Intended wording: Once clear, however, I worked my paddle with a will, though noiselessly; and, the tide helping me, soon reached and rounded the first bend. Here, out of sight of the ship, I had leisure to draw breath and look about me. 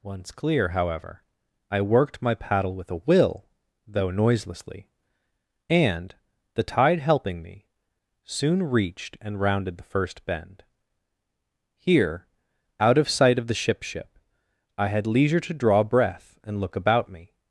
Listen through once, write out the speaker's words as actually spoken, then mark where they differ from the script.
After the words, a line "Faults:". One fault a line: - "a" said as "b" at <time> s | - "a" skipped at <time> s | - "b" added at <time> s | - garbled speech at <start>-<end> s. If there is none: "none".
Once clear, however, I worked my paddle with a will, though noiselessly; and, the tide helping me, soon reached and rounded the first bend. Here, out of sight of the ship ship, I had leisure to draw breath and look about me.
Faults:
- "ship" added at 13.8 s